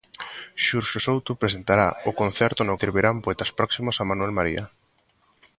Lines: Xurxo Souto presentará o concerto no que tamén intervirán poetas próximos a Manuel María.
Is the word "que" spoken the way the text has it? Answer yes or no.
no